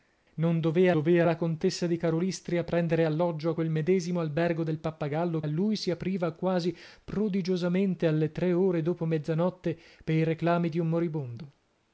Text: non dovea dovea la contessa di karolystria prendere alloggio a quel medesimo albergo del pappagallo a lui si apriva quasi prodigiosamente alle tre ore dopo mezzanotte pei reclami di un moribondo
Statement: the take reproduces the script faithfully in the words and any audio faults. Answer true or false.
true